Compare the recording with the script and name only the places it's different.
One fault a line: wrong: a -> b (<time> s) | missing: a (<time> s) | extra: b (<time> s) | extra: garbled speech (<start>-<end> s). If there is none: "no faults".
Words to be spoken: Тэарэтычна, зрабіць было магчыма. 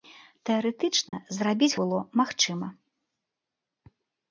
no faults